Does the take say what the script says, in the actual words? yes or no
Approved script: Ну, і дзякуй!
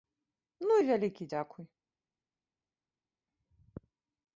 no